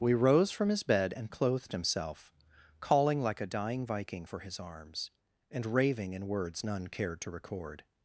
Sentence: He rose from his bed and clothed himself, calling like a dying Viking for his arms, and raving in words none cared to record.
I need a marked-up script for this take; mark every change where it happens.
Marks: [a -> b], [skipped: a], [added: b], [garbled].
[He -> We] rose from his bed and clothed himself, calling like a dying Viking for his arms, and raving in words none cared to record.